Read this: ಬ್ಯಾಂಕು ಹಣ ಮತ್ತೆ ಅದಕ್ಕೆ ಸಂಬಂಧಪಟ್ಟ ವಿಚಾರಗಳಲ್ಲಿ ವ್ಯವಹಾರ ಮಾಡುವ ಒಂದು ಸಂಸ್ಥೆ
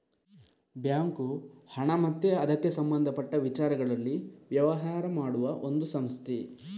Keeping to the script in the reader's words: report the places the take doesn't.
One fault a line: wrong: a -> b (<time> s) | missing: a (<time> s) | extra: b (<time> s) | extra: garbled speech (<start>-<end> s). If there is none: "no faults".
no faults